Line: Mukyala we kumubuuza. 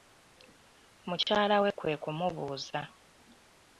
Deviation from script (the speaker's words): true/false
true